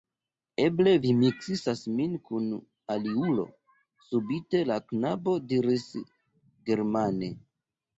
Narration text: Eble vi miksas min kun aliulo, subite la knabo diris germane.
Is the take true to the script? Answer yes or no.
yes